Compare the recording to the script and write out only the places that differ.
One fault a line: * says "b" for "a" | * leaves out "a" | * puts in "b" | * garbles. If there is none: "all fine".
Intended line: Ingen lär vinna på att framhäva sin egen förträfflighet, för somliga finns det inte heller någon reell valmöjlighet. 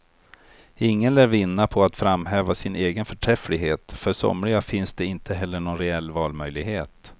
all fine